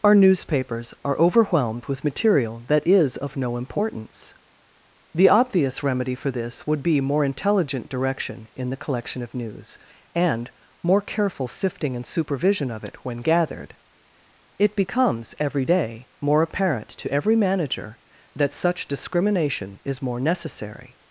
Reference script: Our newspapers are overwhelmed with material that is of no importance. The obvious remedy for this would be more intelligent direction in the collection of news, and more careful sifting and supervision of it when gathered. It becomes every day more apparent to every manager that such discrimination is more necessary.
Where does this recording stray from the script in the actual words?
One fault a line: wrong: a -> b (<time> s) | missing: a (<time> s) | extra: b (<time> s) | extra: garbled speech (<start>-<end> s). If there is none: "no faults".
no faults